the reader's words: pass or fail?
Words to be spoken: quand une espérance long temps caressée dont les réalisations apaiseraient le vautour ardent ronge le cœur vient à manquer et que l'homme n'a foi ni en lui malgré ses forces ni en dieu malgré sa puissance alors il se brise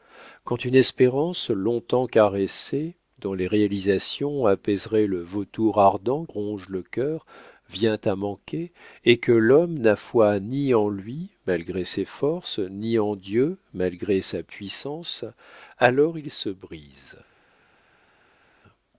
pass